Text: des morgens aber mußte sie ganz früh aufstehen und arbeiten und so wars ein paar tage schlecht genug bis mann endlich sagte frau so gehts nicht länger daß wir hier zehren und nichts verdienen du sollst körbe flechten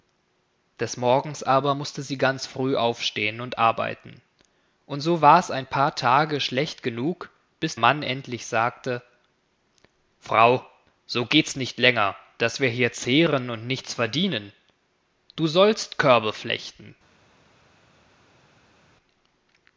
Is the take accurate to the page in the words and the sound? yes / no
yes